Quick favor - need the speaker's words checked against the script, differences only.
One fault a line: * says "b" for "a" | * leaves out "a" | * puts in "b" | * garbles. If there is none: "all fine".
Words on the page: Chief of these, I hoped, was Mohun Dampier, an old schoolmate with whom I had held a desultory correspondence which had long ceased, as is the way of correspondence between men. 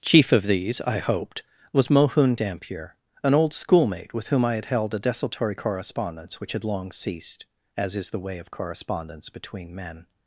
all fine